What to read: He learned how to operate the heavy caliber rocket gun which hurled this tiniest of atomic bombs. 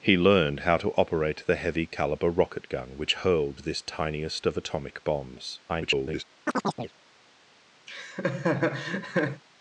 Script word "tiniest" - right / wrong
right